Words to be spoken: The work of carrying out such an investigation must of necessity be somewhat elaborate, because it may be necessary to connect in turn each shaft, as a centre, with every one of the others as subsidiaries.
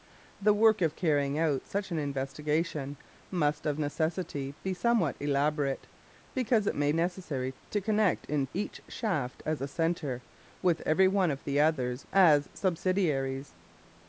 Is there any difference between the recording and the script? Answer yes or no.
yes